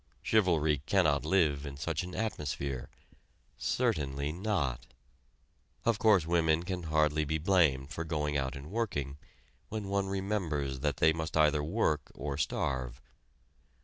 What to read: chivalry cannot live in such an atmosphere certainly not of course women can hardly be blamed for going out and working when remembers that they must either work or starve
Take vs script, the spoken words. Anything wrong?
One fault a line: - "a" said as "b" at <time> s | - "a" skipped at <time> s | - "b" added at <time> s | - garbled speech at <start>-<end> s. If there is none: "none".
- "one" added at 9.9 s